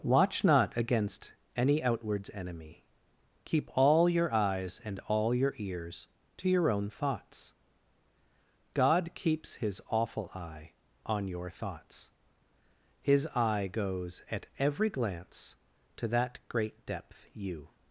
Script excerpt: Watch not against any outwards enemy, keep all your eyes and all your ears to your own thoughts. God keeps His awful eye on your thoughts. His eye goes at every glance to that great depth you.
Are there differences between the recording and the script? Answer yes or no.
no